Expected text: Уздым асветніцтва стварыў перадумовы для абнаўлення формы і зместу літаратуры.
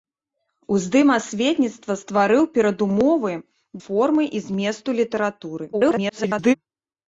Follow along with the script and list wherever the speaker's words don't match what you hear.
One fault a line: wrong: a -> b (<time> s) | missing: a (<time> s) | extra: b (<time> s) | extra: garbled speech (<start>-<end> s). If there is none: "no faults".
missing: для абнаўлення (3.3 s)
extra: garbled speech (5.7-6.5 s)